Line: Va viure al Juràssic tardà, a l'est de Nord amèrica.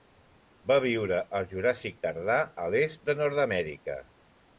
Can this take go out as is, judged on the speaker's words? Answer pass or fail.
pass